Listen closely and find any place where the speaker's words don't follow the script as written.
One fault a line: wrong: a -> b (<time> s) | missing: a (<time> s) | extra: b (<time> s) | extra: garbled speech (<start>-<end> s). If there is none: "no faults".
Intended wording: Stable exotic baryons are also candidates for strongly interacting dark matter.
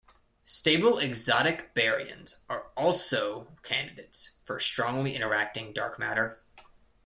no faults